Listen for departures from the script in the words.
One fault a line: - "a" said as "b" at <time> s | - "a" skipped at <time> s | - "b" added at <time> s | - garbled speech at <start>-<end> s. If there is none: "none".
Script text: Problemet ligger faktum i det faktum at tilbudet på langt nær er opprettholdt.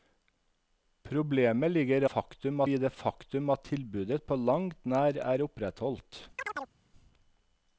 none